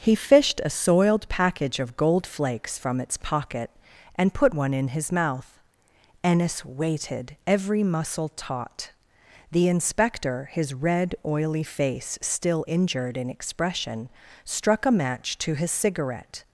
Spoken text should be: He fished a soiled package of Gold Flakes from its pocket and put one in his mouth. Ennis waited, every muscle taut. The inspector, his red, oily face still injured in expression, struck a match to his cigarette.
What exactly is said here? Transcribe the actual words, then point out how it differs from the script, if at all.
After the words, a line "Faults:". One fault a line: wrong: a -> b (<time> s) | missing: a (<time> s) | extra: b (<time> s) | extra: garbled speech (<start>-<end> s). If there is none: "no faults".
He fished a soiled package of Gold Flakes from its pocket and put one in his mouth. Ennis waited, every muscle taut. The inspector, his red, oily face still injured in expression, struck a match to his cigarette.
Faults:
no faults